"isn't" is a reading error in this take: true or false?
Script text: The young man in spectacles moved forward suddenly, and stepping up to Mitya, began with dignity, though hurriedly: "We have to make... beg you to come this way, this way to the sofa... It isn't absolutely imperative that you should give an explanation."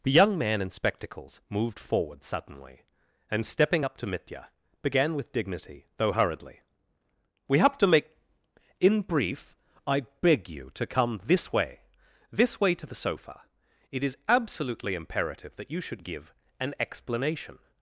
true